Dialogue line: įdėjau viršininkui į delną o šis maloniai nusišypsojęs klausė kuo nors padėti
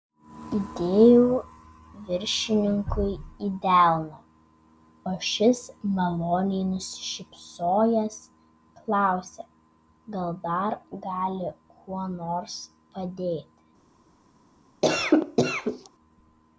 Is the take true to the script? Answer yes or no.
no